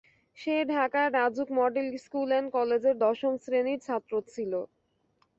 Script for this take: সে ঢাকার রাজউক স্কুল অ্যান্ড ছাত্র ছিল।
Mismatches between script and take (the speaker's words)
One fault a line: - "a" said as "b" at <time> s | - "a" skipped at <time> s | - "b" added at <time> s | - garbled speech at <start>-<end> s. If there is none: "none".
- "মডেল" added at 1.6 s
- "কলেজের দশম শ্রেণির" added at 2.5 s